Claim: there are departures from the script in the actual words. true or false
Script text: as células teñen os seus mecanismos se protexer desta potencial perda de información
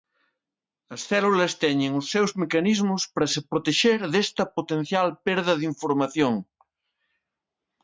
true